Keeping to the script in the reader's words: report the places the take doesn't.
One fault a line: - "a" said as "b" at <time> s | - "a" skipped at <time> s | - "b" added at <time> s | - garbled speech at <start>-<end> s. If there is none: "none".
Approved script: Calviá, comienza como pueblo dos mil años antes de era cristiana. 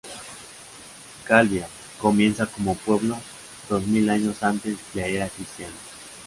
none